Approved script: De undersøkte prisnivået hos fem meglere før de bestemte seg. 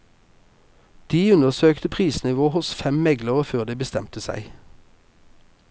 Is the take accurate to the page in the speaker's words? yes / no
yes